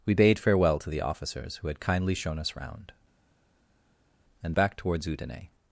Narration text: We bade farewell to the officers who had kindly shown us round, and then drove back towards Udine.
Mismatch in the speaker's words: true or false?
true